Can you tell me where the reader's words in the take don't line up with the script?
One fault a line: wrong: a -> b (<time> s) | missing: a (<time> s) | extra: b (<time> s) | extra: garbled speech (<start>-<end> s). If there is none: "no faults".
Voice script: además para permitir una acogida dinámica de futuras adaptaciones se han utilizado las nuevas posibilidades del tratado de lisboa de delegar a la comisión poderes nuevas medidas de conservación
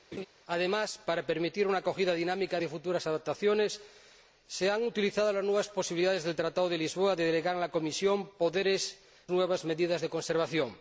no faults